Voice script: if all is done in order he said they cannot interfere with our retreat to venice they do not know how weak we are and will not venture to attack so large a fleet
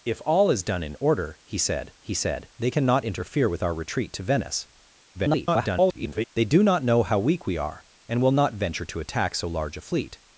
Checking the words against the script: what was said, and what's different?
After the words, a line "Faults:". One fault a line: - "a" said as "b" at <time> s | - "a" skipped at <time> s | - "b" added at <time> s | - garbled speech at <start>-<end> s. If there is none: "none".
if all is done in order he said he said they cannot interfere with our retreat to venice [garbled] they do not know how weak we are and will not venture to attack so large a fleet
Faults:
- "he said" added at 2.0 s
- garbled speech at 5.1-6.3 s